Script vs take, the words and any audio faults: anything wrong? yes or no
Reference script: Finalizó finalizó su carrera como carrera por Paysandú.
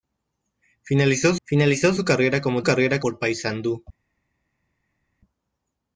no